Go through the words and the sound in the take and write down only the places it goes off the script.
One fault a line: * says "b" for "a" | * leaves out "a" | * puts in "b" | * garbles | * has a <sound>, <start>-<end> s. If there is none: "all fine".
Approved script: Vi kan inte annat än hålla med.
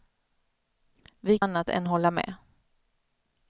* leaves out "kan inte"